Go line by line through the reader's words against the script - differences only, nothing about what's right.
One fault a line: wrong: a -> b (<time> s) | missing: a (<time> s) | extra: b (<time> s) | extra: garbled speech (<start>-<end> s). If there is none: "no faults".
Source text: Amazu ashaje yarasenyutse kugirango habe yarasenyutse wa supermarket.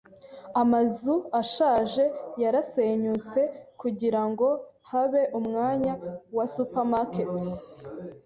wrong: yarasenyutse -> umwanya (5.4 s)